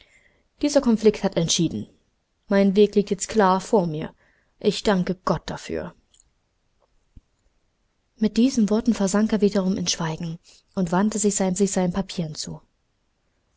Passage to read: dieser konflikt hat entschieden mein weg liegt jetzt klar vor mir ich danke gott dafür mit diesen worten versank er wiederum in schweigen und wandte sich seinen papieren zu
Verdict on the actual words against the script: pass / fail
fail